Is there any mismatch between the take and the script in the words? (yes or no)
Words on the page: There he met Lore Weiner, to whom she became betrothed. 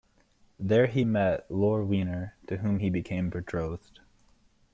yes